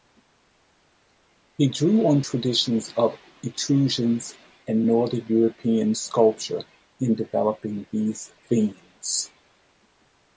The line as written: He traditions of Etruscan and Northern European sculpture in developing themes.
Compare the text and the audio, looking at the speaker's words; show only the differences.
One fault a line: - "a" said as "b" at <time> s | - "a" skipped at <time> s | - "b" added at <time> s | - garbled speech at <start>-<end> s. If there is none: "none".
- "drew on" added at 1.7 s
- "these" added at 7.9 s